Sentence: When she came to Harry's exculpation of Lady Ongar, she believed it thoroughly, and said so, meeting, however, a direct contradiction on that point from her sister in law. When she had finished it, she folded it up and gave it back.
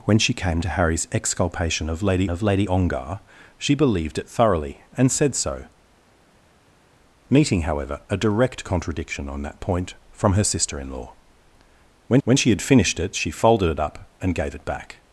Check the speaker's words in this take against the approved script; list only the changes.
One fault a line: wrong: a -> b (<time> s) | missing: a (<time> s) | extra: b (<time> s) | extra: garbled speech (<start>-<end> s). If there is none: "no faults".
extra: of Lady (2.3 s)
extra: when (12.2 s)